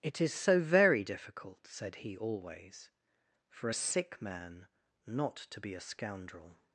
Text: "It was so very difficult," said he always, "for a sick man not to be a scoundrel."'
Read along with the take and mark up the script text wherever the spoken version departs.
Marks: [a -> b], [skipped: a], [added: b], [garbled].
"It [was -> is] so very difficult," said he always, "for a sick man not to be a scoundrel."'